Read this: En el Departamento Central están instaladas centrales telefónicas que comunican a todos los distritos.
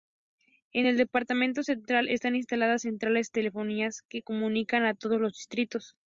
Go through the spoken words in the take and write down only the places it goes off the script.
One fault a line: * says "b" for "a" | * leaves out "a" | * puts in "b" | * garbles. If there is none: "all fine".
all fine